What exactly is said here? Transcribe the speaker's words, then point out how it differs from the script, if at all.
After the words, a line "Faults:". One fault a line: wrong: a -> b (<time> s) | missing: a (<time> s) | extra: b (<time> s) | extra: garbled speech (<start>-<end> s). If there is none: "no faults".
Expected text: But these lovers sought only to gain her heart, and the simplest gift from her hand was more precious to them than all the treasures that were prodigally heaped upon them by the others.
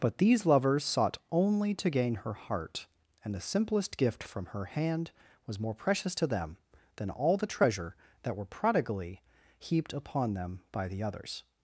But these lovers sought only to gain her heart, and the simplest gift from her hand was more precious to them than all the treasure that were prodigally heaped upon them by the others.
Faults:
wrong: treasures -> treasure (7.5 s)